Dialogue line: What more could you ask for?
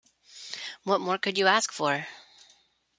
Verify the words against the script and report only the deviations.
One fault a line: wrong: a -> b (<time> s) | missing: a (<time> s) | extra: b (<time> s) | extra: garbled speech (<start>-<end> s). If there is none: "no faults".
no faults